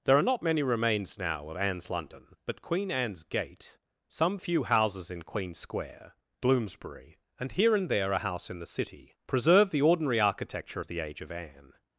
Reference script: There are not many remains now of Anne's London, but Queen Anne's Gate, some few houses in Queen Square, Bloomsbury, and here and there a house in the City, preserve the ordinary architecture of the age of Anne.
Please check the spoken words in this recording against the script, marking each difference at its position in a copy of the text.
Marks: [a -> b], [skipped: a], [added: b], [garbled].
There are not many remains now of Anne's London, but Queen Anne's Gate, some few houses in Queen Square, Bloomsbury, and here and there a house in the City, preserve the ordinary architecture of the age of Anne.